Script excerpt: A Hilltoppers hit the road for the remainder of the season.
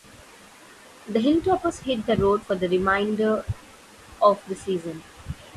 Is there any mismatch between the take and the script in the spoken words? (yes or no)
yes